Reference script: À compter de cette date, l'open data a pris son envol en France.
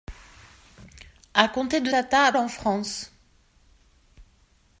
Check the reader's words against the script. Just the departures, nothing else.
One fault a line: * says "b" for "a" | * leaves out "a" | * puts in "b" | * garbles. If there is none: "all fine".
* leaves out "cette date l'open"
* leaves out "pris son envol"